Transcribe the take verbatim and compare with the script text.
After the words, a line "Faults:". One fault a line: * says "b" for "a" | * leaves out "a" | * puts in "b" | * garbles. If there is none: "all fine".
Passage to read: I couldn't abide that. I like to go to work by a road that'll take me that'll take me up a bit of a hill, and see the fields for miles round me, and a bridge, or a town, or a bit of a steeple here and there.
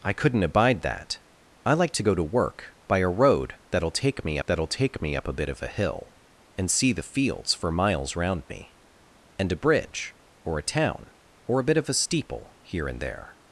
I couldn't abide that. I like to go to work by a road that'll take me that'll take me up a bit of a hill, and see the fields for miles round me, and a bridge, or a town, or a bit of a steeple here and there.
Faults:
all fine